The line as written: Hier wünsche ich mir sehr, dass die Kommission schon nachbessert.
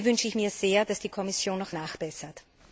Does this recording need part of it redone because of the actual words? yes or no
yes